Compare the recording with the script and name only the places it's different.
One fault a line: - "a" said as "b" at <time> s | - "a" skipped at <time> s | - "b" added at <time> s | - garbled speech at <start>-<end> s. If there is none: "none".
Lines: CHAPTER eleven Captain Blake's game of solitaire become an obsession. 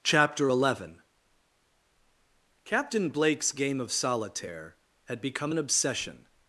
- "had" added at 5.1 s